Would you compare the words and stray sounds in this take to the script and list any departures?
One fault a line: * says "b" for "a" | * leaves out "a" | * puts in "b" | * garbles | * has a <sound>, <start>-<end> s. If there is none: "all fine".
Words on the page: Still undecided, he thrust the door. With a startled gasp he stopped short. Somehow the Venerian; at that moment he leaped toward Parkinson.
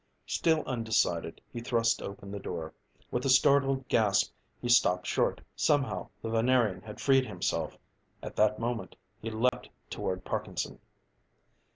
* puts in "open"
* puts in "had freed himself"
* has a dropout, 9.5-9.5 s